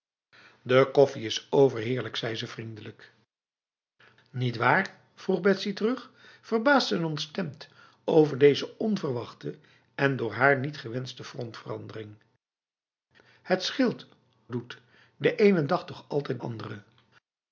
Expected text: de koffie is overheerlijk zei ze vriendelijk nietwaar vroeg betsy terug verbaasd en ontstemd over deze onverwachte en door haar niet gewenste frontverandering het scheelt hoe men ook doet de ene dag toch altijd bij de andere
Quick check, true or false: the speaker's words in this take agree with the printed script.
false